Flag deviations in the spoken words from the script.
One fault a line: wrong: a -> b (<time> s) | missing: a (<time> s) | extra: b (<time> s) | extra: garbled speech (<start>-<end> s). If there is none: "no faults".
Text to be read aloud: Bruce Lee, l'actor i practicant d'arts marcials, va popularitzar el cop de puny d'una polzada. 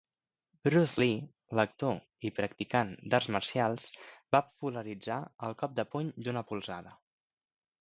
no faults